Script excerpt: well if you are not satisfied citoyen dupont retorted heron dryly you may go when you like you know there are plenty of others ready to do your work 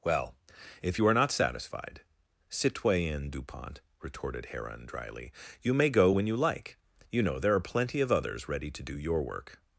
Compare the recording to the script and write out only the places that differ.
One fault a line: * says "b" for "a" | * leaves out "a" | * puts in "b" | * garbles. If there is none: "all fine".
all fine